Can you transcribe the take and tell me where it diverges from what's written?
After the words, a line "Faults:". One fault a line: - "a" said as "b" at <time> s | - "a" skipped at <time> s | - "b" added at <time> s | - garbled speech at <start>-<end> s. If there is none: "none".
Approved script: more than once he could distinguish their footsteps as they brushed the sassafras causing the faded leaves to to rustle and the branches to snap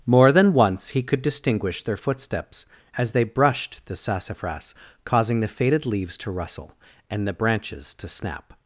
more than once he could distinguish their footsteps as they brushed the sassafras causing the faded leaves to rustle and the branches to snap
Faults:
- "to" skipped at 6.3 s